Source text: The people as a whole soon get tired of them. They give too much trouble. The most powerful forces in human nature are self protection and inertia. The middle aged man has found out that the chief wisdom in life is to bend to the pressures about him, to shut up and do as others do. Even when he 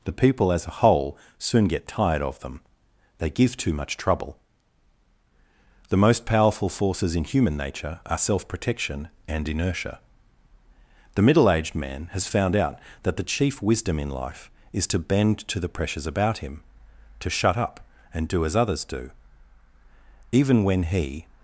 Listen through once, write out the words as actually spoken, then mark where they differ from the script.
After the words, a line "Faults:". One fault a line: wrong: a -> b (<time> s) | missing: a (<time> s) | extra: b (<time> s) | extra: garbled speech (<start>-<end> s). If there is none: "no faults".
The people as a whole soon get tired of them. They give too much trouble. The most powerful forces in human nature are self protection and inertia. The middle aged man has found out that the chief wisdom in life is to bend to the pressures about him, to shut up and do as others do. Even when he
Faults:
no faults